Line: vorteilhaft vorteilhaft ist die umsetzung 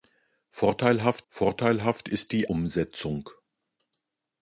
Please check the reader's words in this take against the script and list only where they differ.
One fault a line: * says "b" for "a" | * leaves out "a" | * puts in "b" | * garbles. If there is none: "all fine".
all fine